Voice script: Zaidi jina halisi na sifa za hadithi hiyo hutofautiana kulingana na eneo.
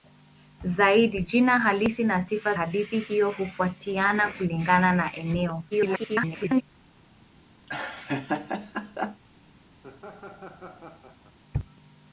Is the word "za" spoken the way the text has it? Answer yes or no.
no